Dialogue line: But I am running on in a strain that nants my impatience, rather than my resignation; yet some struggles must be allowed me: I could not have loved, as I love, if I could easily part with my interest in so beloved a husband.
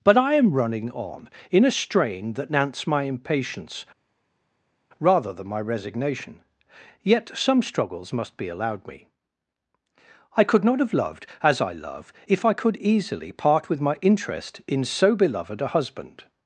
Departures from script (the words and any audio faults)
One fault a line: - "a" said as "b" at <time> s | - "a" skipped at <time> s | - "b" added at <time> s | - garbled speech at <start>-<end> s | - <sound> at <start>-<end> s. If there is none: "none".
none